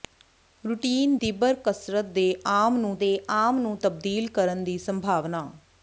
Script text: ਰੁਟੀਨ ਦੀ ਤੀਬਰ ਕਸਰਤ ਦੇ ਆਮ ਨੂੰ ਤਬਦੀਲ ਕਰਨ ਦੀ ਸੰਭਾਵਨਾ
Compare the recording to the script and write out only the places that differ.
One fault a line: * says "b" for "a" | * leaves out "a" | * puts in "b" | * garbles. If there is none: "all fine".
* leaves out "ਦੀ"
* puts in "ਦੇ ਆਮ ਨੂੰ"